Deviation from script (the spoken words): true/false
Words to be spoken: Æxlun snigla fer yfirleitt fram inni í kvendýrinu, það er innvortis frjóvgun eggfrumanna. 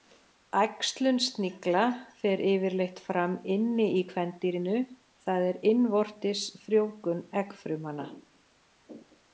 false